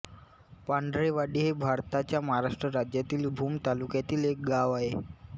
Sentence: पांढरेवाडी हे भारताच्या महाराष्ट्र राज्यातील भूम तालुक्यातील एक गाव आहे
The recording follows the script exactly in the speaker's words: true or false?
true